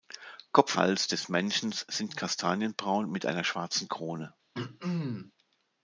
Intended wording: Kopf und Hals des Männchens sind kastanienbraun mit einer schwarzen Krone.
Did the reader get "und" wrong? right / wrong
wrong